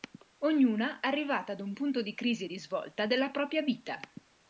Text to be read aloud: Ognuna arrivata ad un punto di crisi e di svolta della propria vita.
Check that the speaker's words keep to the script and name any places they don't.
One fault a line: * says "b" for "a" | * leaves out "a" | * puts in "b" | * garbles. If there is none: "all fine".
all fine